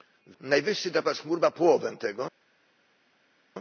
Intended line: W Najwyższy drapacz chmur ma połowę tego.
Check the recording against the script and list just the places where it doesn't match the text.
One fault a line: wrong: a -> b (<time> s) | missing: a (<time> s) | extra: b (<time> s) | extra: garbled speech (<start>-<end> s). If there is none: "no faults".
no faults